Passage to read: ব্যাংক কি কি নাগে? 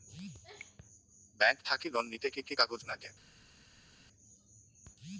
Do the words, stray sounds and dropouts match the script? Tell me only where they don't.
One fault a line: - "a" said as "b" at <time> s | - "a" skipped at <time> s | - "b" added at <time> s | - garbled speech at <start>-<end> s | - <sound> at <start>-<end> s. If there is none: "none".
- "থাকি লোন নিতে" added at 1.6 s
- "কাগজ" added at 2.5 s